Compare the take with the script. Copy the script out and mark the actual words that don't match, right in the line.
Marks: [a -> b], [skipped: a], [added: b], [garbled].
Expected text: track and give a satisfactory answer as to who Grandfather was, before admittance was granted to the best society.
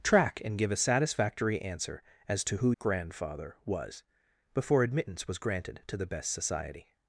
track and give a satisfactory answer as to who Grandfather was, before admittance was granted to the best society.